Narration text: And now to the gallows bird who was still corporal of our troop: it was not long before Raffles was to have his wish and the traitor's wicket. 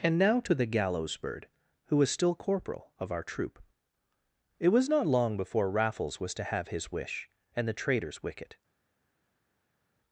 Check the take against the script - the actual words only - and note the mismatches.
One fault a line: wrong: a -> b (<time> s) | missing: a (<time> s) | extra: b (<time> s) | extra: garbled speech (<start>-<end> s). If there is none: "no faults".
no faults